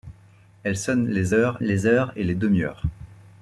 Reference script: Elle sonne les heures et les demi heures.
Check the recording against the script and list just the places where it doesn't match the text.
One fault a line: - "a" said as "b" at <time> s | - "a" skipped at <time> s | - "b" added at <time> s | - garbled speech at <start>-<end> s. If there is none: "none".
- "les heures" added at 1.6 s